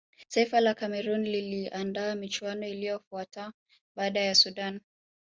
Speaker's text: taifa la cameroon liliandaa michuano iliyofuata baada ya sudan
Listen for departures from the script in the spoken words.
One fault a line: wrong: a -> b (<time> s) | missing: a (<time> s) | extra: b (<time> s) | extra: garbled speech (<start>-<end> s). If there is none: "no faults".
no faults